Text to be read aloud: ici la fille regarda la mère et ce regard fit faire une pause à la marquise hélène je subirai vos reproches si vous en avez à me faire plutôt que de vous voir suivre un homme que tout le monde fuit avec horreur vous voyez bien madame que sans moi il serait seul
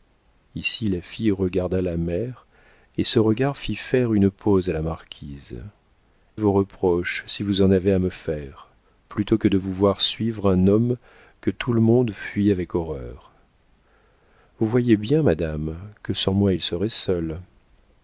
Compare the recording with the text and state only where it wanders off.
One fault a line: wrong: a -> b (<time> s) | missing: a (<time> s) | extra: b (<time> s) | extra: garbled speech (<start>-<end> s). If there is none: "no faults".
missing: hélène je subirai (5.6 s)